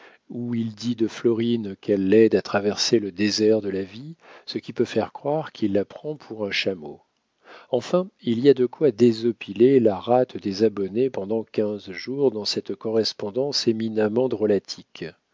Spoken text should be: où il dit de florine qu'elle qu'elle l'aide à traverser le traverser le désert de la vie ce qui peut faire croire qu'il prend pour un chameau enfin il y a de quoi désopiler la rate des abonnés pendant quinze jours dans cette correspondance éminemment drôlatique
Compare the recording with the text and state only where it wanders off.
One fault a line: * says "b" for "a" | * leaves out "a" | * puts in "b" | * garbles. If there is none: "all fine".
* leaves out "qu'elle"
* leaves out "traverser le"
* puts in "la"